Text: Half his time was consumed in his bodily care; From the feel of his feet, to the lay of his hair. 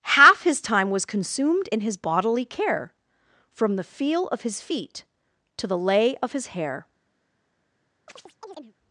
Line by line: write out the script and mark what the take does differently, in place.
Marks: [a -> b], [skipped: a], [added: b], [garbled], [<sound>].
Half his time was consumed in his bodily care; From the feel of his feet, to the lay of his hair. [chirp]